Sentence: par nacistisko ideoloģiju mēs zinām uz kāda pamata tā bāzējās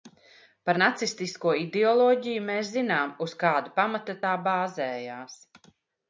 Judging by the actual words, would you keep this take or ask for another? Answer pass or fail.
pass